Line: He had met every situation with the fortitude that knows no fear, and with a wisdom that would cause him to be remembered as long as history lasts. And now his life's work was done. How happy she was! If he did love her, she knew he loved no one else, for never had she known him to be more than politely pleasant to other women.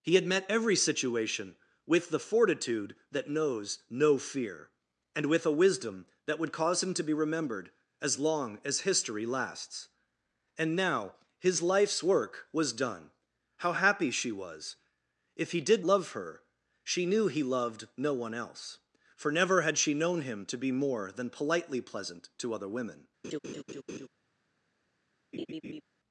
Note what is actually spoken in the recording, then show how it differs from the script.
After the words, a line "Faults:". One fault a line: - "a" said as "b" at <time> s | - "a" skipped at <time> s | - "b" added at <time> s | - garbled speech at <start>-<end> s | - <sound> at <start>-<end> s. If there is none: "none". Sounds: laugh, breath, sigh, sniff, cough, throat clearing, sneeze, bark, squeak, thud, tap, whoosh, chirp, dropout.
He had met every situation with the fortitude that knows no fear, and with a wisdom that would cause him to be remembered as long as history lasts. And now his life's work was done. How happy she was! If he did love her, she knew he loved no one else, for never had she known him to be more than politely pleasant to other women.
Faults:
- laugh at 23.2-24.1 s
- laugh at 25.3-25.8 s